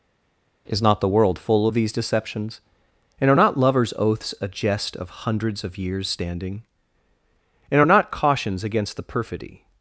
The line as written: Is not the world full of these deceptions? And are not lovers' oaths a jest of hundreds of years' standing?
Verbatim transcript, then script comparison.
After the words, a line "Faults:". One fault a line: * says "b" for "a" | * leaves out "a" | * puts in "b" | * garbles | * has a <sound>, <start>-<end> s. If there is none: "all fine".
Is not the world full of these deceptions? And are not lovers' oaths a jest of hundreds of years' standing? And are not cautions against the perfidy
Faults:
* puts in "And are not cautions against the perfidy"